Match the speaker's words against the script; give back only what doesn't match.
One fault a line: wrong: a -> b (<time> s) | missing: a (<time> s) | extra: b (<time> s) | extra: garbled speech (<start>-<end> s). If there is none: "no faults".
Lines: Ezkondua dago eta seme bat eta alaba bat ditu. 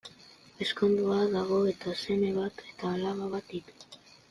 no faults